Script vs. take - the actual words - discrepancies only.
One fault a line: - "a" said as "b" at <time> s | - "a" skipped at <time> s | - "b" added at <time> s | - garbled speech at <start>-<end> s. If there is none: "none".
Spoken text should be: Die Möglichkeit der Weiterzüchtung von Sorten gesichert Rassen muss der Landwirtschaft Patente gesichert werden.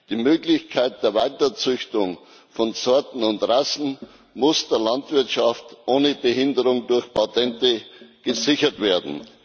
- "gesichert" said as "und" at 3.2 s
- "ohne Behinderung durch" added at 5.8 s